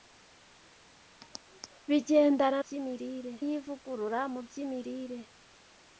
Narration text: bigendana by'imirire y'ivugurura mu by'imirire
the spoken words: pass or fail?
pass